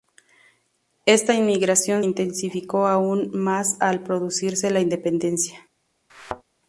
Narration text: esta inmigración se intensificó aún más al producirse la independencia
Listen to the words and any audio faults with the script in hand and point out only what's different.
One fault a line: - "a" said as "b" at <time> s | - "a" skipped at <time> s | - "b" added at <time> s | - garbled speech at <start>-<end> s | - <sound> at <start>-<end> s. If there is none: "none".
- "se" skipped at 2.0 s
- thud at 6.1-6.4 s